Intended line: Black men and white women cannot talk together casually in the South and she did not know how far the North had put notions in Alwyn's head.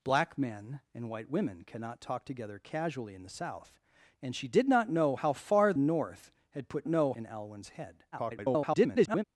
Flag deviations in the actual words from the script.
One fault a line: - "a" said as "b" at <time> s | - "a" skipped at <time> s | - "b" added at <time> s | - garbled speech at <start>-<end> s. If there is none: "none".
- "the" skipped at 5.7 s
- "notions" said as "know" at 6.9 s
- garbled speech at 8.1-9.2 s